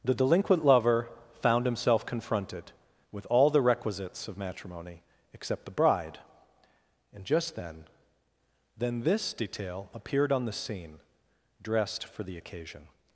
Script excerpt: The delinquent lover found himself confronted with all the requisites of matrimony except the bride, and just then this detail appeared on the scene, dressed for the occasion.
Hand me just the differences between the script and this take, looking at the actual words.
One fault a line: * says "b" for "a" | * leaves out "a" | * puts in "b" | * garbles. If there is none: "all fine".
* puts in "then"